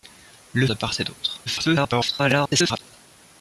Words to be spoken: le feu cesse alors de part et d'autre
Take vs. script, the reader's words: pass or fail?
fail